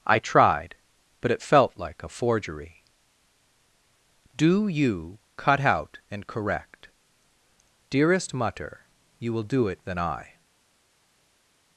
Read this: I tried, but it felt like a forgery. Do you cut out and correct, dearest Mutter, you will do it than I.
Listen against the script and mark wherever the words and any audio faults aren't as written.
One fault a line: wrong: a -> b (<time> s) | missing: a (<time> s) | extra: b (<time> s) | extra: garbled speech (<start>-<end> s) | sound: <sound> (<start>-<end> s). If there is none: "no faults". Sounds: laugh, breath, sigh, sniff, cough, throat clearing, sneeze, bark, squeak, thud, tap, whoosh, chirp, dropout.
no faults